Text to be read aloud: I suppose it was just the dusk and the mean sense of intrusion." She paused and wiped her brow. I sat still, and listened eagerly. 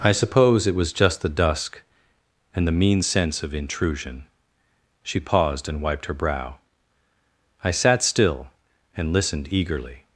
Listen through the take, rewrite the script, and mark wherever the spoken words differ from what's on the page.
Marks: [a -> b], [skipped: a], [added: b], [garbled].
I suppose it was just the dusk and the mean sense of intrusion." She paused and wiped her brow. I sat still, and listened eagerly.